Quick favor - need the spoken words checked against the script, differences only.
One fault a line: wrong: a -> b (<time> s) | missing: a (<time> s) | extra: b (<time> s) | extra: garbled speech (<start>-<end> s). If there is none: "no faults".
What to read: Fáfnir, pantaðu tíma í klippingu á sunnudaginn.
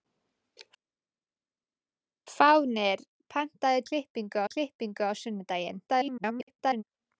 wrong: tíma -> klippingu (3.9 s)
extra: garbled speech (5.9-6.8 s)